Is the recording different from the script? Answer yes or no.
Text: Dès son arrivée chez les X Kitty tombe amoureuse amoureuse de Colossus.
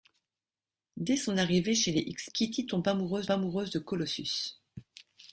no